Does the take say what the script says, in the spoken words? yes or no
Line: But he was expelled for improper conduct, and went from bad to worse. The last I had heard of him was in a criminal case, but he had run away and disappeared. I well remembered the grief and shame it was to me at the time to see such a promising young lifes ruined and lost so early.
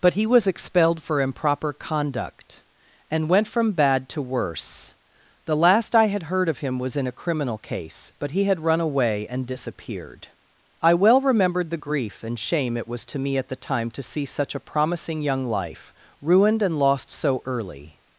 no